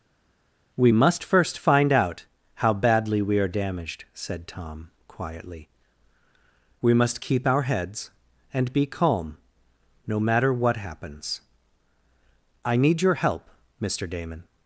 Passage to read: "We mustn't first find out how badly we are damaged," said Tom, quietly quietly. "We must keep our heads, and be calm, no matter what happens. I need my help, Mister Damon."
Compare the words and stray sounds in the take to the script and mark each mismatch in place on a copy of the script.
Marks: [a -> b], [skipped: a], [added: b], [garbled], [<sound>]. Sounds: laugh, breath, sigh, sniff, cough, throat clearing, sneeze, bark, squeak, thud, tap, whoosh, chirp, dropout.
"We [mustn't -> must] first find out how badly we are damaged," said Tom, quietly [skipped: quietly.] "We must keep our heads, and be calm, no matter what happens. I need [my -> your] help, Mister Damon."